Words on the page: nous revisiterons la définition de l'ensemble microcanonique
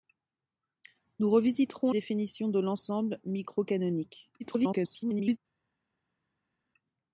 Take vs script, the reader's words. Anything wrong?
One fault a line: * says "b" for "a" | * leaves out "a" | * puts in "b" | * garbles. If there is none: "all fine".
* leaves out "la"
* garbles